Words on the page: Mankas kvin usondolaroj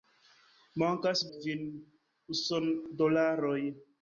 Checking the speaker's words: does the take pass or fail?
pass